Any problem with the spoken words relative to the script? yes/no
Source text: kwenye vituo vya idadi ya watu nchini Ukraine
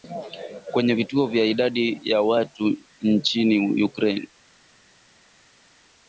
no